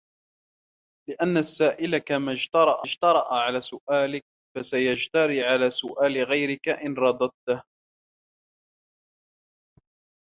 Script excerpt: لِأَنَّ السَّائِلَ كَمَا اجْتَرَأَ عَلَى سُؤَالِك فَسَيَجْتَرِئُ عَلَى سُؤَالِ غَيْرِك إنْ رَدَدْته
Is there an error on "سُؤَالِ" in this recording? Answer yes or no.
no